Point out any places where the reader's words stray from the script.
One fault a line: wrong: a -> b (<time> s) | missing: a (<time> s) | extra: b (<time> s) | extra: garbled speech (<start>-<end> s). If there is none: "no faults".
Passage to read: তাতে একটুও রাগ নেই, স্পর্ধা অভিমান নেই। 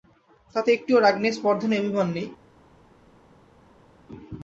extra: নেই (1.7 s)